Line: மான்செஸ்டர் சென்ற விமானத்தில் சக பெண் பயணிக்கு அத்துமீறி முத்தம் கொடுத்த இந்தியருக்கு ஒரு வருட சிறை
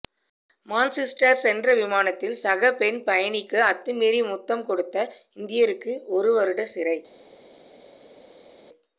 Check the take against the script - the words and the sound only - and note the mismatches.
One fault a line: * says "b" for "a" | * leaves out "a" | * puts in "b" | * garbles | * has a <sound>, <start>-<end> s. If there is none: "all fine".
all fine